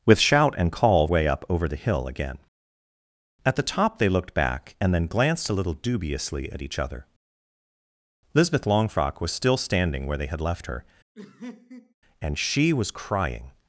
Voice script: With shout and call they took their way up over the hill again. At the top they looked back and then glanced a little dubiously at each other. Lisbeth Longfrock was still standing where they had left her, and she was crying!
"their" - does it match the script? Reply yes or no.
no